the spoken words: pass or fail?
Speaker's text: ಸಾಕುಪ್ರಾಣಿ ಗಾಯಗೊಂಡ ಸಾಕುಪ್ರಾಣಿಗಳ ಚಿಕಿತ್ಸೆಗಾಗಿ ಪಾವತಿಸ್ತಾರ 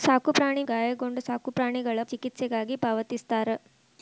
pass